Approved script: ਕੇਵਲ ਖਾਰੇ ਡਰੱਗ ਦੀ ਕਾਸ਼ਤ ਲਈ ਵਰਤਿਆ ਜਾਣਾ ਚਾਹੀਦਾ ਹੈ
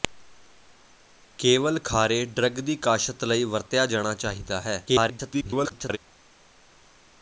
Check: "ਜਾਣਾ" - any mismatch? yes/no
no